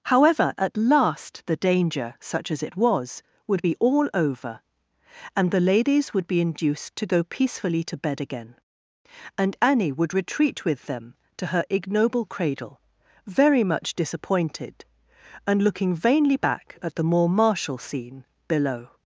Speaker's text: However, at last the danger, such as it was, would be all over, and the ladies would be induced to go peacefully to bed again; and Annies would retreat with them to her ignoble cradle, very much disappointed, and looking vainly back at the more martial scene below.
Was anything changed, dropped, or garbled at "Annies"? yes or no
yes